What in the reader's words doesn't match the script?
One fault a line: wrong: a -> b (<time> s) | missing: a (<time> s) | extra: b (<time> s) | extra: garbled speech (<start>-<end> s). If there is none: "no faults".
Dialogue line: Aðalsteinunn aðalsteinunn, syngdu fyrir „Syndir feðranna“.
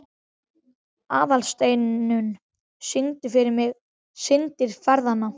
missing: aðalsteinunn (2.3 s)
extra: mig (3.6 s)